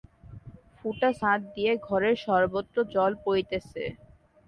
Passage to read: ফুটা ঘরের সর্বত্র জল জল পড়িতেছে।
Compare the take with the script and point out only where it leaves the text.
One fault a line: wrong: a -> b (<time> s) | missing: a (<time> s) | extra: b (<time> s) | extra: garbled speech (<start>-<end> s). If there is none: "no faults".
extra: ছাদ দিয়া (1.2 s)
missing: জল (3.1 s)